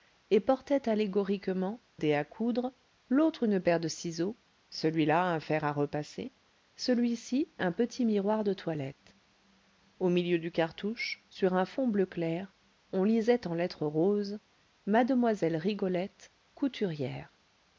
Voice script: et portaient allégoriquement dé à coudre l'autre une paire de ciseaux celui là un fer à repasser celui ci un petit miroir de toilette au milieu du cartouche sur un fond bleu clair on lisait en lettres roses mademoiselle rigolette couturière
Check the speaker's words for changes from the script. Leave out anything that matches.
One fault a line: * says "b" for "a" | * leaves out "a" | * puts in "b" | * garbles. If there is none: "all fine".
all fine